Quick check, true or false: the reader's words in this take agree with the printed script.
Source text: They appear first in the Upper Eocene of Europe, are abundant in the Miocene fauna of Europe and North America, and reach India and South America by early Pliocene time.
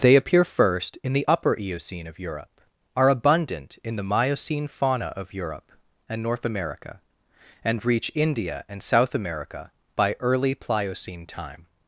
true